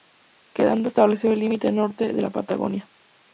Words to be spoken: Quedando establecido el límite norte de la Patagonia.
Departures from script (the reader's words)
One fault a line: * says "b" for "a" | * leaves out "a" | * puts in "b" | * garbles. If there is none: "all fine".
all fine